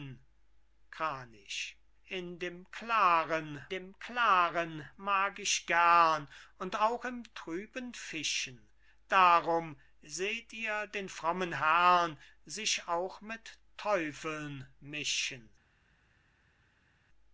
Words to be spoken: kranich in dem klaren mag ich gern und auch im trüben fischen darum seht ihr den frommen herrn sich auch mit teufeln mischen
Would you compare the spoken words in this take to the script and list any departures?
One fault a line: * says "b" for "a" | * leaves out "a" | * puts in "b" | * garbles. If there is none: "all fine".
* puts in "dem klaren"